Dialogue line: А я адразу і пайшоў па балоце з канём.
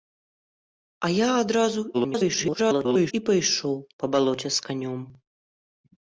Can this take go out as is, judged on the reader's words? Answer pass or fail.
fail